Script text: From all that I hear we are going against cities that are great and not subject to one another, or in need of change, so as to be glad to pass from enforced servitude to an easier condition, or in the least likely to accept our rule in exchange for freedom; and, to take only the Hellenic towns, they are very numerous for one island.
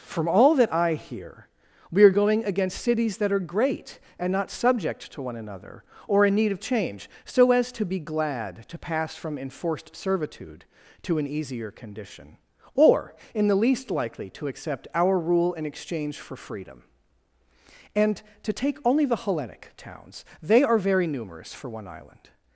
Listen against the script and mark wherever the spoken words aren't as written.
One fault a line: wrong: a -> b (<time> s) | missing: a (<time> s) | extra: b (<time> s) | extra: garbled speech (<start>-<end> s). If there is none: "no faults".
no faults